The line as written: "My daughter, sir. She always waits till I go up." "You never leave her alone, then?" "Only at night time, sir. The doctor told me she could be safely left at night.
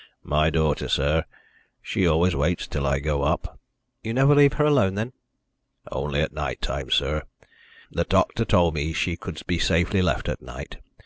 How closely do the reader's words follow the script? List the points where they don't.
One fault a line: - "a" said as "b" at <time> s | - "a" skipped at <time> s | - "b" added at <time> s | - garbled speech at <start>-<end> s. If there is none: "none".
none